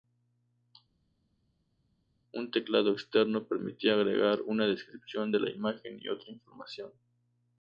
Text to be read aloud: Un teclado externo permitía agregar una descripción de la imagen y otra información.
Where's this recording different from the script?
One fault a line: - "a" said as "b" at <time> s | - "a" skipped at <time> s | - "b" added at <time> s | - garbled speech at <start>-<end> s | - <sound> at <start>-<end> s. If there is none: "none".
none